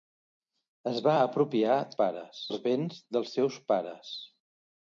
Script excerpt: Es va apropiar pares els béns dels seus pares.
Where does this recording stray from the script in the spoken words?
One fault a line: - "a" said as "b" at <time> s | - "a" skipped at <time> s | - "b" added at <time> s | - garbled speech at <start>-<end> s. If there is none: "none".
none